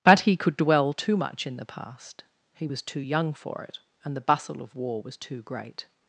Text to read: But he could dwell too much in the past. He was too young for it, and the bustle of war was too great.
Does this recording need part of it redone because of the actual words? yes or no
no